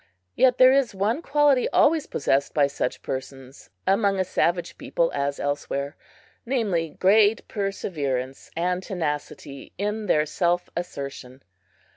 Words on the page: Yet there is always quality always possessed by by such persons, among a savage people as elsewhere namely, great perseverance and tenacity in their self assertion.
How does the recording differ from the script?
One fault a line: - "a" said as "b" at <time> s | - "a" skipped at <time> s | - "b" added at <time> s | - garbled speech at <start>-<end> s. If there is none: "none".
- "always" said as "one" at 0.9 s
- "by" skipped at 2.6 s